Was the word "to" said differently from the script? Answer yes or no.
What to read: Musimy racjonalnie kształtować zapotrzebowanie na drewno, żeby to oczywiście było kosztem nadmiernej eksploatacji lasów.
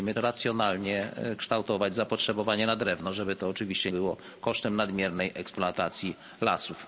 no